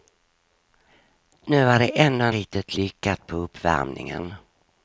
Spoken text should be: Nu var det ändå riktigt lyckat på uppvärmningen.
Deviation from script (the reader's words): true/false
false